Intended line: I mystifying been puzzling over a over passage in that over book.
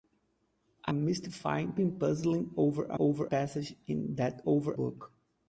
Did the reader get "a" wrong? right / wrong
right